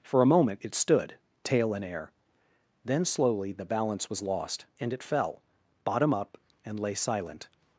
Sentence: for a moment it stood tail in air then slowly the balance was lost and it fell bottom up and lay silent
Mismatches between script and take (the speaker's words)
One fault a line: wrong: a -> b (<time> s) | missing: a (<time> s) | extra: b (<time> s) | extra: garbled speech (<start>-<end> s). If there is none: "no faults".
no faults